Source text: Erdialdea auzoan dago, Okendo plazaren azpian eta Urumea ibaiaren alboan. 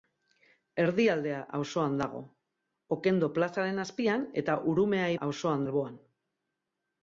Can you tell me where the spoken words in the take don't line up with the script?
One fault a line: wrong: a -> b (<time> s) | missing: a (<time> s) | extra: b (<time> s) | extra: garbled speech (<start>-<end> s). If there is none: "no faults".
wrong: ibaiaren -> auzoan (5.3 s)